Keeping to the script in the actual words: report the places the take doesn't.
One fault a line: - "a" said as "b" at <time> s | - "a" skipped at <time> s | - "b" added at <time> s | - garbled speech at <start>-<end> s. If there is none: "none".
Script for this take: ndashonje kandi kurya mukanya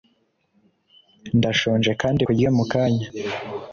none